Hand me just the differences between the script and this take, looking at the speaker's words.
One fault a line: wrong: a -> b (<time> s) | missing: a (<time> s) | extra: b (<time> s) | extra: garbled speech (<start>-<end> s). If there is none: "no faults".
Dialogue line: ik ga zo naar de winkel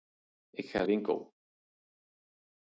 missing: zo naar de (0.8 s)